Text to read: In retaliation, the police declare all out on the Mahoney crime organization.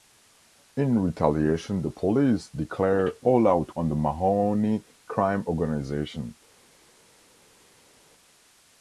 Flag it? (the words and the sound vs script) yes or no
no